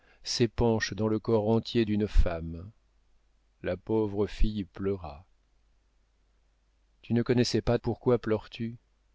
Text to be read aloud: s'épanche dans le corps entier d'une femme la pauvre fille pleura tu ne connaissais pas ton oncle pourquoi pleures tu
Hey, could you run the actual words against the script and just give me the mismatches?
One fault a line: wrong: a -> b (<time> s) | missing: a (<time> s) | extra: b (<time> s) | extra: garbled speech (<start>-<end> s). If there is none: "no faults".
missing: ton oncle (7.8 s)